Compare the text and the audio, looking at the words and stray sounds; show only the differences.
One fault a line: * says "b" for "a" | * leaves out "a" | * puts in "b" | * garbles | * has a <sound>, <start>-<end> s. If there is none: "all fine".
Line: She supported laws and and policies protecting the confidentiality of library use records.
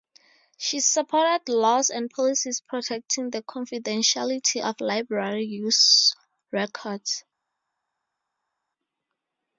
* leaves out "and"